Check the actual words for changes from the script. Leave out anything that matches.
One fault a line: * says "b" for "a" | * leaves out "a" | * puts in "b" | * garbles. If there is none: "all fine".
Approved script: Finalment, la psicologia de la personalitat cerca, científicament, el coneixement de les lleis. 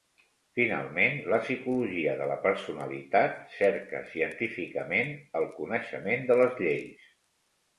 all fine